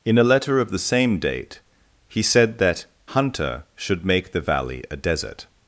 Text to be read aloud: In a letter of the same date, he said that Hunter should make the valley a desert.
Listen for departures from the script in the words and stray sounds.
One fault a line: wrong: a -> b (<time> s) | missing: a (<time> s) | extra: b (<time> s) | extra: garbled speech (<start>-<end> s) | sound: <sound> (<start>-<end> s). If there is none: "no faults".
no faults